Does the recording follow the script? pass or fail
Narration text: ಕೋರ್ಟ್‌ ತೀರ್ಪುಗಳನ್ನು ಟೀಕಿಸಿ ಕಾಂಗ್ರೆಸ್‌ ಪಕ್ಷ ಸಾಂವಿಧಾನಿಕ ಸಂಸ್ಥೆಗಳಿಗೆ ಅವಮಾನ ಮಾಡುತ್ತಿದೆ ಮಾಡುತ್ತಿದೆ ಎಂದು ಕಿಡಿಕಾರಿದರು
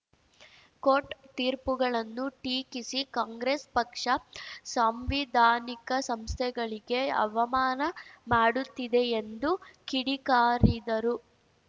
fail